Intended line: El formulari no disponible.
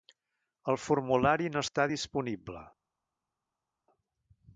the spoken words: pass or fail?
fail